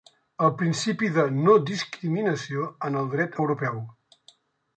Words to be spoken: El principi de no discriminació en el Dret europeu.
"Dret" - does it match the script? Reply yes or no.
yes